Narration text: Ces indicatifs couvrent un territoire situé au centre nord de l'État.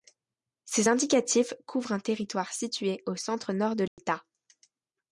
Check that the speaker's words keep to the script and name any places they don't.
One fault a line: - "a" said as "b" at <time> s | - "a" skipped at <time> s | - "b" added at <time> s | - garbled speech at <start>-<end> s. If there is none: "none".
none